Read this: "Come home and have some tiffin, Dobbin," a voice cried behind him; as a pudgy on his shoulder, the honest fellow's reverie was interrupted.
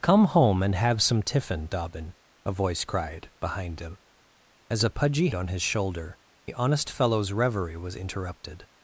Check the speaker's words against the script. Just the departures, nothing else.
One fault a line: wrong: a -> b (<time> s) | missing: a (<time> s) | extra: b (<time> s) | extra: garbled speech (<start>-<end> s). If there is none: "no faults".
no faults